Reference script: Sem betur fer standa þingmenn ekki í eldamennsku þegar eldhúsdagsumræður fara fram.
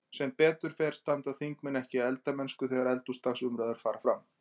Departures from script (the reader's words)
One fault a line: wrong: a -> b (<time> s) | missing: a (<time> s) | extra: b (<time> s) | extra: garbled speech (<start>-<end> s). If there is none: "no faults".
no faults